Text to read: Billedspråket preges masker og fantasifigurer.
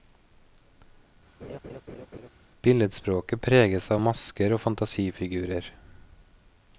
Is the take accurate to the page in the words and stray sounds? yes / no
no